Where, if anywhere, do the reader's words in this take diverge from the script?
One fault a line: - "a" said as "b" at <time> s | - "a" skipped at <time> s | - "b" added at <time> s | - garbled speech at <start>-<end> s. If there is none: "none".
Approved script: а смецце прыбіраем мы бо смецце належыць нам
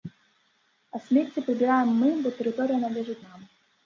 - "смецце" said as "тэрыторыя" at 2.4 s